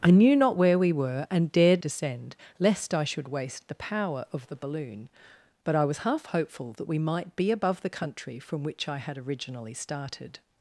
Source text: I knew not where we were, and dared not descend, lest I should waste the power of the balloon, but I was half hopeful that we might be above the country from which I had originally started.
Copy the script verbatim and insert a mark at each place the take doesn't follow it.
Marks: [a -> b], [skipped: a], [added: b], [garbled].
I knew not where we were, and dared [skipped: not] descend, lest I should waste the power of the balloon, but I was half hopeful that we might be above the country from which I had originally started.